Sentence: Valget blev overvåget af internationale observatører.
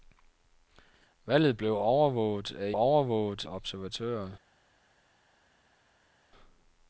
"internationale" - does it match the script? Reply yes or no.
no